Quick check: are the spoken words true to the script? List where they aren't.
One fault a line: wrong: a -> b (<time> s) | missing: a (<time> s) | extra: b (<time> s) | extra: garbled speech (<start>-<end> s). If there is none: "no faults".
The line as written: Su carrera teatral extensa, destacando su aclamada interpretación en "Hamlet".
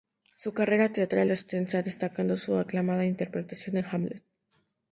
no faults